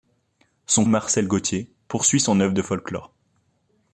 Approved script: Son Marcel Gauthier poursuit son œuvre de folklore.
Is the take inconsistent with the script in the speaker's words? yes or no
no